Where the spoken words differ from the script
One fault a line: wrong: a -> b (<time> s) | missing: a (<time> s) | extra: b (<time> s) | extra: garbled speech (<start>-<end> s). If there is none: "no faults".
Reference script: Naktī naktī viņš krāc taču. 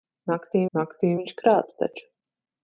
no faults